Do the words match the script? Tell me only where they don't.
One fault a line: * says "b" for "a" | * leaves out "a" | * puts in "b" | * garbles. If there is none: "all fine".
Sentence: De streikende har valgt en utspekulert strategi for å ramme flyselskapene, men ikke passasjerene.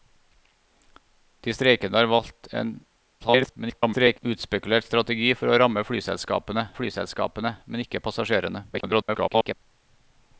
* garbles
* puts in "flyselskapene"
* garbles